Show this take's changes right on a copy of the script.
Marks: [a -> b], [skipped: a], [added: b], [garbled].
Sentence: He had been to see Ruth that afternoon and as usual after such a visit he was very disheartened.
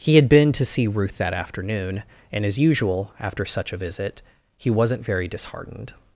He had been to see Ruth that afternoon and as usual after such a visit he [was -> wasn't] very disheartened.